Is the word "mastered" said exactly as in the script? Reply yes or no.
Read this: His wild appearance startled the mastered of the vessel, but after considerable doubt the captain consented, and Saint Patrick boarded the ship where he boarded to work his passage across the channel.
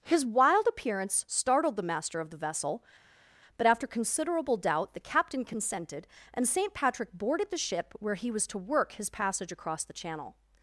no